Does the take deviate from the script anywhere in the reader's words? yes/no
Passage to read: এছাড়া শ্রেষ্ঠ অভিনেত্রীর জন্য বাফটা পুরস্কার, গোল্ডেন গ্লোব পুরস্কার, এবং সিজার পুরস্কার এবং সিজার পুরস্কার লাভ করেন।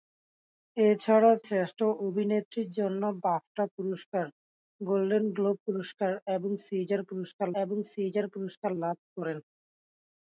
no